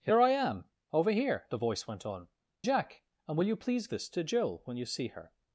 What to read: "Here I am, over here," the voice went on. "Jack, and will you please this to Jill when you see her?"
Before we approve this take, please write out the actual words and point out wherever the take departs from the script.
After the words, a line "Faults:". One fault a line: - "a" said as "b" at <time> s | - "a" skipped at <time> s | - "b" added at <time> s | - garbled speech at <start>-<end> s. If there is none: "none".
"Here I am, over here," the voice went on. "Jack, and will you please this to Jill when you see her?"
Faults:
none